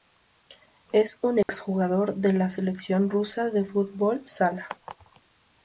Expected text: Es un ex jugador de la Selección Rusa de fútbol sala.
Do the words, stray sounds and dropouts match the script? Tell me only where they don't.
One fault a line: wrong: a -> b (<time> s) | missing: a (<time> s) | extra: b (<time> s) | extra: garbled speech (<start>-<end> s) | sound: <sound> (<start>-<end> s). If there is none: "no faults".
sound: dropout (1.4-1.5 s)